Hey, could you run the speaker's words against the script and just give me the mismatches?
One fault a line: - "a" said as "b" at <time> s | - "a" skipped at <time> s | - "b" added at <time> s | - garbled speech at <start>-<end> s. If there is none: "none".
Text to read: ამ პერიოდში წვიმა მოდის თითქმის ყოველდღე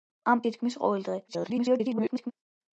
- "პერიოდში წვიმა მოდის" skipped at 0.4 s
- garbled speech at 1.3-2.3 s